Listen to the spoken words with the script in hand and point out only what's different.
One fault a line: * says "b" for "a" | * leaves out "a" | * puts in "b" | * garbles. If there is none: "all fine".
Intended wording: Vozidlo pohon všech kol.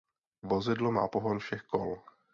* puts in "má"